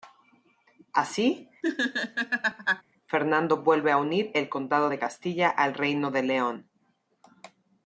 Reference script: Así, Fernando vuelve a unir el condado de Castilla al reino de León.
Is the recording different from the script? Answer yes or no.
no